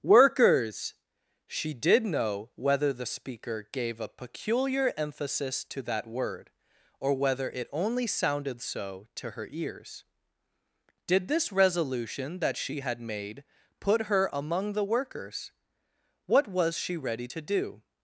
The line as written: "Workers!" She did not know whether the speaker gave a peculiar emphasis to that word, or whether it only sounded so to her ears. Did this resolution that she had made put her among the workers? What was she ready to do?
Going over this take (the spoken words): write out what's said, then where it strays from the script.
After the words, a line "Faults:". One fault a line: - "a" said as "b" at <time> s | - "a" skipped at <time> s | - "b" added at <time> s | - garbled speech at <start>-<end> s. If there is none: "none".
"Workers!" She did know whether the speaker gave a peculiar emphasis to that word, or whether it only sounded so to her ears. Did this resolution that she had made put her among the workers? What was she ready to do?
Faults:
- "not" skipped at 2.0 s